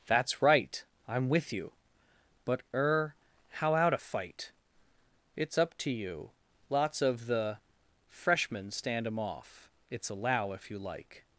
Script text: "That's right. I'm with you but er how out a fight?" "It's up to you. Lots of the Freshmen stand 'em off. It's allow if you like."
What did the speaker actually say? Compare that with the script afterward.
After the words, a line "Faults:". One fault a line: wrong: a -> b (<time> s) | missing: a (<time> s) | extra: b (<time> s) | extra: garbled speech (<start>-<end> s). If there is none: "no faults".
"That's right. I'm with you but er how out a fight?" "It's up to you. Lots of the Freshmen stand 'em off. It's allow if you like."
Faults:
no faults